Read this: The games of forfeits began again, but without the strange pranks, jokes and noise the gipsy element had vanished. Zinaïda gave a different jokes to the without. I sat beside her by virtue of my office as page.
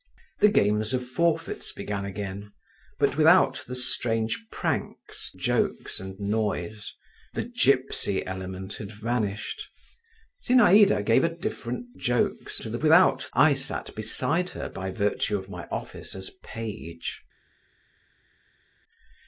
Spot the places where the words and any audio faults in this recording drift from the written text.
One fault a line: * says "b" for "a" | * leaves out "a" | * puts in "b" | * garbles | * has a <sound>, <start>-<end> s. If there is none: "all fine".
all fine